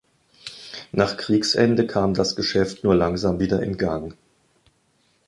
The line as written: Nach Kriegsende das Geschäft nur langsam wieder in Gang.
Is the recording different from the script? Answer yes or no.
yes